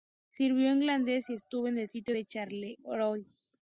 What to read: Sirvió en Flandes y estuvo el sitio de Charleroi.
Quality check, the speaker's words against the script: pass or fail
fail